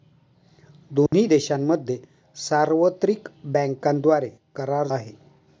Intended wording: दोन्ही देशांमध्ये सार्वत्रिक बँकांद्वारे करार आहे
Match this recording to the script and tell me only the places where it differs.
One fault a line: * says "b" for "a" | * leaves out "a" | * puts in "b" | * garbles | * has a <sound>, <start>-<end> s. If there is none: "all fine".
* has a dropout, 1.1-1.1 s